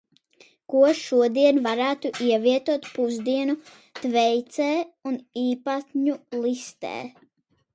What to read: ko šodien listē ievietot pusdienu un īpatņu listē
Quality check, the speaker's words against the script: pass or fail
fail